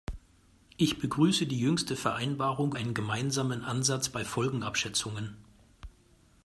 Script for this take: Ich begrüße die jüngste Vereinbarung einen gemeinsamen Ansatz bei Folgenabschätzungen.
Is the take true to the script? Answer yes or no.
yes